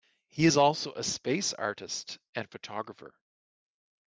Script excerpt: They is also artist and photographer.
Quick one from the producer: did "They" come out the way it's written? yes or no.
no